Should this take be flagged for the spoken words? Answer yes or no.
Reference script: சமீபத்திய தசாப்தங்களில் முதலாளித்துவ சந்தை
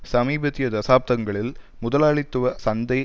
no